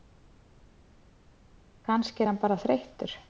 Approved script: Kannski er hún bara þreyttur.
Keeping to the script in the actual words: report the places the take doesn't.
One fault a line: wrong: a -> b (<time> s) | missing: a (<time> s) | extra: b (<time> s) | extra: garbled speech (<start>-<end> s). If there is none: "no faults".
wrong: hún -> hann (2.3 s)